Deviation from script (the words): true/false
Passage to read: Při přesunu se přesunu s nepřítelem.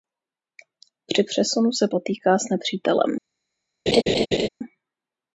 true